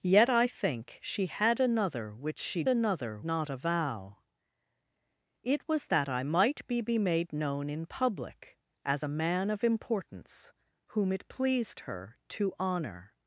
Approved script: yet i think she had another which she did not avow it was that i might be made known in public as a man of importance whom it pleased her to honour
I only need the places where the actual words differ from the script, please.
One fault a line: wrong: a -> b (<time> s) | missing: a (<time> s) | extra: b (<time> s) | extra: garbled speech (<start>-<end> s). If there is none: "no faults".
wrong: did -> another (2.7 s)